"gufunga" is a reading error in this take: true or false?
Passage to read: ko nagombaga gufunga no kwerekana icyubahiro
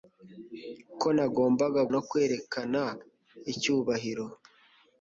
true